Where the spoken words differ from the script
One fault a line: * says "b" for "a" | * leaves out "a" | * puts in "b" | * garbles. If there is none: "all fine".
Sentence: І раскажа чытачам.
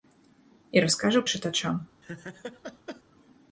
all fine